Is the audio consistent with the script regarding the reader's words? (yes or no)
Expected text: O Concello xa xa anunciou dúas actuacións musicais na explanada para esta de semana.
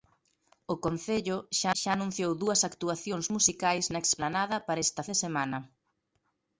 yes